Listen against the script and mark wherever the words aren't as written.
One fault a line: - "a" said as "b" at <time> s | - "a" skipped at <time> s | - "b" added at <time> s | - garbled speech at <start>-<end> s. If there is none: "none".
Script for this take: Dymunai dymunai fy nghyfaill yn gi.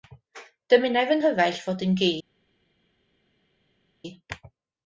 - "dymunai" skipped at 1.1 s
- "fod" added at 1.6 s